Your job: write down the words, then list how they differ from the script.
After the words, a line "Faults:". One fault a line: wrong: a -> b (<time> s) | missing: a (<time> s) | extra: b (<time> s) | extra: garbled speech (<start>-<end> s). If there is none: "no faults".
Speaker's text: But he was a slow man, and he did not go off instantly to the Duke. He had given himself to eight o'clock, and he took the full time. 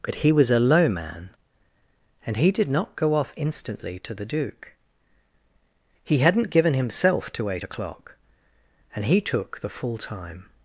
But he was a low man, and he did not go off instantly to the Duke. He hadn't given himself to eight o'clock, and he took the full time.
Faults:
wrong: slow -> low (0.6 s)
wrong: had -> hadn't (6.2 s)